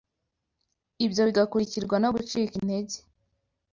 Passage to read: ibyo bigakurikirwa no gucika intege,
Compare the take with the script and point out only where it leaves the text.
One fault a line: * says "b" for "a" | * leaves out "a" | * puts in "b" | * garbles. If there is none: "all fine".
all fine